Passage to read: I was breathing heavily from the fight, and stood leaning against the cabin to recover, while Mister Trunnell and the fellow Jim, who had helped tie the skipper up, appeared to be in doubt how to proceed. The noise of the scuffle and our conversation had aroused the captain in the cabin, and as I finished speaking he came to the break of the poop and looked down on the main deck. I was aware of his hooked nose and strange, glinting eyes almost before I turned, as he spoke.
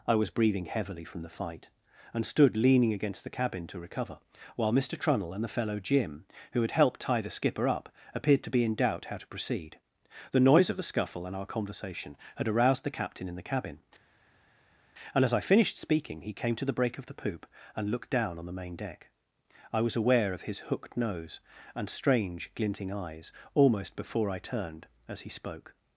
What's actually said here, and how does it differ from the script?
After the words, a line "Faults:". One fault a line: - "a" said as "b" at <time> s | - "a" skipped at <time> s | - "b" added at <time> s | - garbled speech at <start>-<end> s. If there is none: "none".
I was breathing heavily from the fight, and stood leaning against the cabin to recover, while Mister Trunnell and the fellow Jim, who had helped tie the skipper up, appeared to be in doubt how to proceed. The noise of the scuffle and our conversation had aroused the captain in the cabin, and as I finished speaking he came to the break of the poop and looked down on the main deck. I was aware of his hooked nose and strange, glinting eyes almost before I turned, as he spoke.
Faults:
none